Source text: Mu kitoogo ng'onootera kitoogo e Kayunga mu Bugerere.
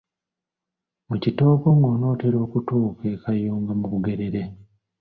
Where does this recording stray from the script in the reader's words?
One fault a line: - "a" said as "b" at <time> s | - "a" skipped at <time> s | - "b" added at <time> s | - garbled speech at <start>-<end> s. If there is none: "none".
- "kitoogo" said as "okutuuka" at 2.4 s